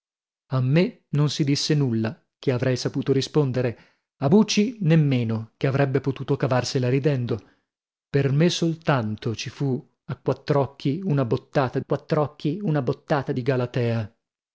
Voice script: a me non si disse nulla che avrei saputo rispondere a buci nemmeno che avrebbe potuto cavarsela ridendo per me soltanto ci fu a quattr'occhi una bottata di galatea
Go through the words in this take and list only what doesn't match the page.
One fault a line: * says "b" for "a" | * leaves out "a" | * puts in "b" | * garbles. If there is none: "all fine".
* puts in "quattr'occhi una bottata"